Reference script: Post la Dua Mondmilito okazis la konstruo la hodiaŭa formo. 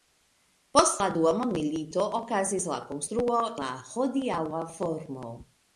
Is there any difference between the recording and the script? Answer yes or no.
no